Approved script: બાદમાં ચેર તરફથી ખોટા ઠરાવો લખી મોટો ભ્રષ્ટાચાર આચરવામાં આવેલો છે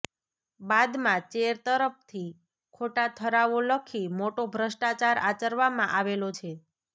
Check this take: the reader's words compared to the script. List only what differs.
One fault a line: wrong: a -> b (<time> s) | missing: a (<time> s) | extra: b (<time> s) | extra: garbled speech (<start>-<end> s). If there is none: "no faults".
no faults